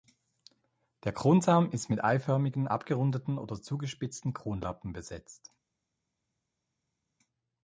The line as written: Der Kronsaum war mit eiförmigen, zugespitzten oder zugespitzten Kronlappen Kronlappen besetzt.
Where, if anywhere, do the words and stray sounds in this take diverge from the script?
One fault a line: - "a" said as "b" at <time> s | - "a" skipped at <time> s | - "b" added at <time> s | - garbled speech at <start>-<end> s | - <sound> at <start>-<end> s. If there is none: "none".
- "war" said as "ist" at 1.7 s
- "zugespitzten" said as "abgerundeten" at 2.6 s
- "Kronlappen" skipped at 4.9 s